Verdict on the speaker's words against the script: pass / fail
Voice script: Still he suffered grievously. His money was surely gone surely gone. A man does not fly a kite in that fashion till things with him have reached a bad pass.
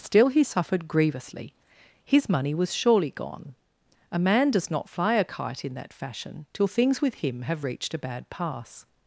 fail